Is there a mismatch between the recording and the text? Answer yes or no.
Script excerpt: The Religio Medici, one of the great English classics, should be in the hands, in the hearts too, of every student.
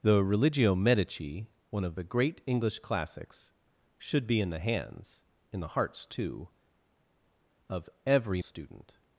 no